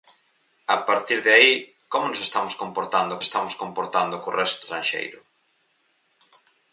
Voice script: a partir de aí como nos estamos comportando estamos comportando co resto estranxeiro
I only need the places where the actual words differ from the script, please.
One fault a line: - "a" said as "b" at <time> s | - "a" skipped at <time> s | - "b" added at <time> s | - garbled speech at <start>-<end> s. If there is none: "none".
none